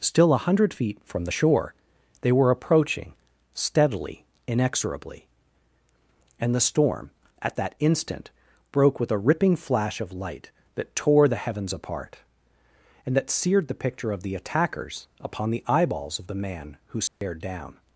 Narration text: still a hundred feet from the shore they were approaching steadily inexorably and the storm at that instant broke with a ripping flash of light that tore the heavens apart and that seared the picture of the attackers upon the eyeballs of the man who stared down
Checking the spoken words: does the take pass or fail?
pass